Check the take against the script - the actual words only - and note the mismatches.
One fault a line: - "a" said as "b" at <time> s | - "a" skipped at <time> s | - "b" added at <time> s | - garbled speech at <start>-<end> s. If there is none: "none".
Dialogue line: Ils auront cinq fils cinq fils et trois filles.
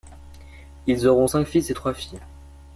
- "cinq fils" skipped at 1.7 s